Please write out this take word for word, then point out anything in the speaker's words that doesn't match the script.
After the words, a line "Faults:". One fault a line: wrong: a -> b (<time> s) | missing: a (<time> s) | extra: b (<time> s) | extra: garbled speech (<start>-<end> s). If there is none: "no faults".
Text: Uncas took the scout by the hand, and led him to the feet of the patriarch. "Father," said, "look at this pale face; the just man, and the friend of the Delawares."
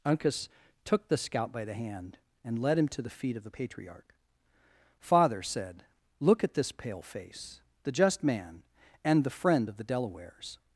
Uncas took the scout by the hand, and led him to the feet of the patriarch. "Father," said, "look at this pale face; the just man, and the friend of the Delawares."
Faults:
no faults